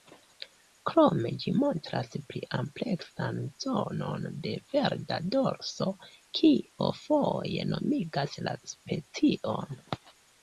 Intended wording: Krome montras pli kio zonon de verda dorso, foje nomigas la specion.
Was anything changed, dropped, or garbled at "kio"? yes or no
yes